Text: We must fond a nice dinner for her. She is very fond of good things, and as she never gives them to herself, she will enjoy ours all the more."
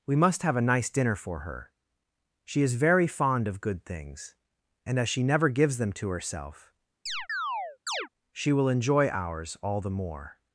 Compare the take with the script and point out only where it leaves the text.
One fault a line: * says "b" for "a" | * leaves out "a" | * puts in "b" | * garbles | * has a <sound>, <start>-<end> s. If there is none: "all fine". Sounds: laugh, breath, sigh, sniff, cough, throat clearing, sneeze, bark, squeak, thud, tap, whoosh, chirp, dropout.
* says "have" for "fond"
* has a chirp, 7.1-8.1 s